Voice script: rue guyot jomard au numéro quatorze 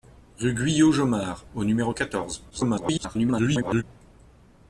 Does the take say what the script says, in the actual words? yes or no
no